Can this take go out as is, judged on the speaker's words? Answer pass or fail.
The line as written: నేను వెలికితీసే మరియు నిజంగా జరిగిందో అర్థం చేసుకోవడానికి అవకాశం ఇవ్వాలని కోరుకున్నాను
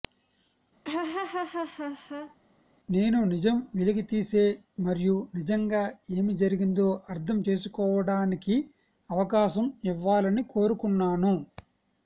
fail